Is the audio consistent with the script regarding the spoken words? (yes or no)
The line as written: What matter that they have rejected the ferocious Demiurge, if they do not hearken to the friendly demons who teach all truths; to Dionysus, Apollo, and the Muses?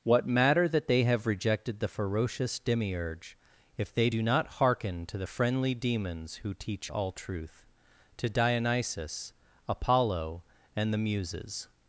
no